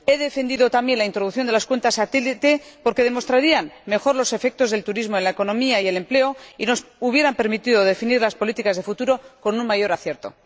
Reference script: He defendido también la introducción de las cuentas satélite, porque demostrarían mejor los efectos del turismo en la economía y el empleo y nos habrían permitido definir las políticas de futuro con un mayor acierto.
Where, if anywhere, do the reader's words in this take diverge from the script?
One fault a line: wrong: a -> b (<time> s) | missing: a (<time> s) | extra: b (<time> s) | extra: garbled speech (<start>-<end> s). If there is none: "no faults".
no faults